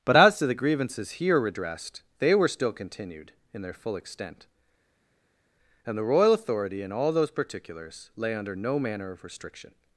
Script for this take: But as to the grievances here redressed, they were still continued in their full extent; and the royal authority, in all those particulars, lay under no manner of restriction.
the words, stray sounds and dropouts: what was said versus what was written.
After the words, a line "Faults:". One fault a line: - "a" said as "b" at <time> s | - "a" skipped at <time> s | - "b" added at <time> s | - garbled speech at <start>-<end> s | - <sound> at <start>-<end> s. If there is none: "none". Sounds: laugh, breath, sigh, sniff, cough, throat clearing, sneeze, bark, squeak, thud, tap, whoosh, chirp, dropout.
But as to the grievances here redressed, they were still continued in their full extent; and the royal authority, in all those particulars, lay under no manner of restriction.
Faults:
none